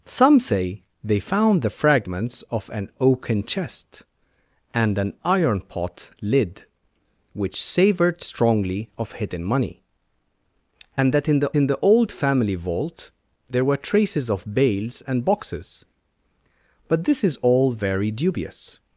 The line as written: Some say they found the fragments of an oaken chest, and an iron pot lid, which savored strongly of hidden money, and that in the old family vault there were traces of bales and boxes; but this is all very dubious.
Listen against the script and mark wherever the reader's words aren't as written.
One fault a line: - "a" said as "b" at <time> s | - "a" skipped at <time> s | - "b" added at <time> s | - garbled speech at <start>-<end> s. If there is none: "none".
- "in the" added at 11.6 s